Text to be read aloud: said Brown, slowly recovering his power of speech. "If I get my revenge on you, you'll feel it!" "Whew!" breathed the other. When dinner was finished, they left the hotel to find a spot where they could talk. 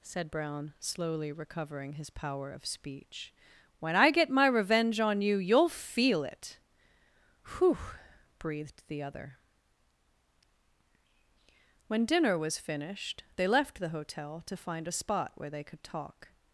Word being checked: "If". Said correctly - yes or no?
no